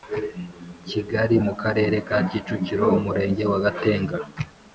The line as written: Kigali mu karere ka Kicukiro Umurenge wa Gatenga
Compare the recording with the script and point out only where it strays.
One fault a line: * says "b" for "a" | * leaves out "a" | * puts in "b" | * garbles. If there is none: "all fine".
all fine